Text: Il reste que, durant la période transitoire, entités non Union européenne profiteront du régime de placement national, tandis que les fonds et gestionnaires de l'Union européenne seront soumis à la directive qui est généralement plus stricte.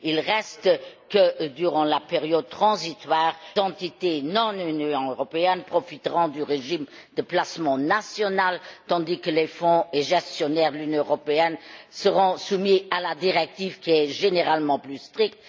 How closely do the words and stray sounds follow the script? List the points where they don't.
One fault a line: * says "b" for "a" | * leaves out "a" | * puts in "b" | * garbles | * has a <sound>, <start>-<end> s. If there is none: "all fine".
all fine